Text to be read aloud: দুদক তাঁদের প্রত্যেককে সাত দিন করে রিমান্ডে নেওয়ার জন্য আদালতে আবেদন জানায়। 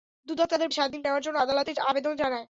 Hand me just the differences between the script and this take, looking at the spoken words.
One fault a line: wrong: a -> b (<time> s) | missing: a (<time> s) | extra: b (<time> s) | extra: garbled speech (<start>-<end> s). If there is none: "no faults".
missing: প্রত্যেককে (0.7 s)
missing: করে রিমান্ডে (1.0 s)